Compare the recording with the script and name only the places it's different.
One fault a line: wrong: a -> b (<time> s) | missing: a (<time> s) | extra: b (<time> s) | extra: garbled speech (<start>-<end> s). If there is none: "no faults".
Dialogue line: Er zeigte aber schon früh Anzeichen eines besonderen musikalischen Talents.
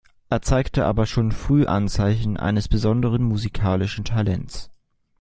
no faults